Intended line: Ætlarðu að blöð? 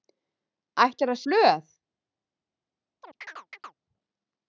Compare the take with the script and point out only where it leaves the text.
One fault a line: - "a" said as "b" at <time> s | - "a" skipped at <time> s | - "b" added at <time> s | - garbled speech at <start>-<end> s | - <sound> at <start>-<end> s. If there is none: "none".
- chirp at 3.0-3.8 s